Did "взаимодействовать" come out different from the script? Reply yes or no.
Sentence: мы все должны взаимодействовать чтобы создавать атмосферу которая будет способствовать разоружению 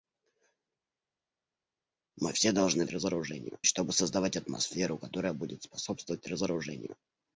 yes